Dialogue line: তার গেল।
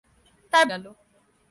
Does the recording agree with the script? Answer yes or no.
yes